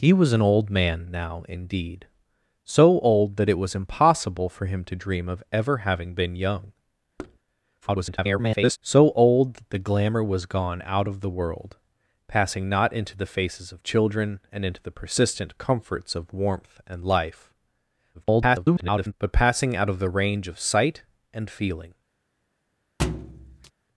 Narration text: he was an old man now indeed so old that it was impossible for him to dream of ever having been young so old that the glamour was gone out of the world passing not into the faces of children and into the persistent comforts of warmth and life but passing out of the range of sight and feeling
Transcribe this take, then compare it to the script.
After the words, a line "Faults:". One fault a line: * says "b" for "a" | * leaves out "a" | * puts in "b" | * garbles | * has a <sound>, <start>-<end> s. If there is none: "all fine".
he was an old man now indeed so old that it was impossible for him to dream of ever having been young [garbled] so old that the glamour was gone out of the world passing not into the faces of children and into the persistent comforts of warmth and life [garbled] but passing out of the range of sight and feeling
Faults:
* has a thud, 7.2-7.4 s
* garbles
* garbles
* has a thud, 23.0-23.7 s